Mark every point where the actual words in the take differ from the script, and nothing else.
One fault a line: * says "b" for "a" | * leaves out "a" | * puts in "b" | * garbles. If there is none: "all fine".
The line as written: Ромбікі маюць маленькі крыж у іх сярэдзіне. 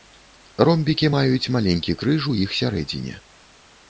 all fine